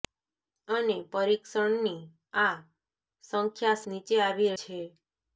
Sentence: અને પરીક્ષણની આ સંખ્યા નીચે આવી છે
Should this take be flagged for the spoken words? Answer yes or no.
no